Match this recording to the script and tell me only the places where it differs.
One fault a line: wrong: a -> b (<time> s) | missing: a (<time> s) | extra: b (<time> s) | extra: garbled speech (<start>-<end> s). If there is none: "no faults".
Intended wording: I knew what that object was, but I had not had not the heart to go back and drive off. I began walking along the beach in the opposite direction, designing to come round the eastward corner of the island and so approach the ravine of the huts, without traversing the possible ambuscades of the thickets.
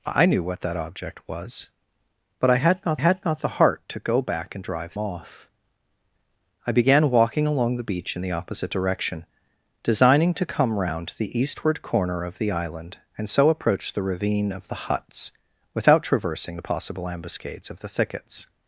no faults